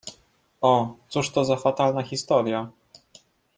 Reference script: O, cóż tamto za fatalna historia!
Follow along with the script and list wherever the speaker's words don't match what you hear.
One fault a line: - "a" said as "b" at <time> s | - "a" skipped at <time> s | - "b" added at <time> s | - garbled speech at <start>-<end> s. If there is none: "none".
- "tamto" said as "to" at 1.3 s